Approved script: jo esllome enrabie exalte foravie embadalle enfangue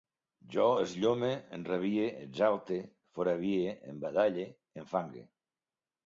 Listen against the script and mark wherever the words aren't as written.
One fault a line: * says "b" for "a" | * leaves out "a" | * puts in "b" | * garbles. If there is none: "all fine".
all fine